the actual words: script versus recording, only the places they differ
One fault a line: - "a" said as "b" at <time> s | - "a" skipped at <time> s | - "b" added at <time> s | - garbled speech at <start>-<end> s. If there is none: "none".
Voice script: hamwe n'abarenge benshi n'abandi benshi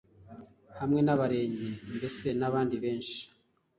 - "benshi" said as "mbese" at 1.9 s